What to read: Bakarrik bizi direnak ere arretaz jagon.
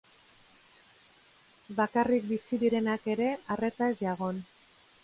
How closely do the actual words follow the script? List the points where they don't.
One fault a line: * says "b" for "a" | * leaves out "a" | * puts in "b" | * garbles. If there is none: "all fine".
all fine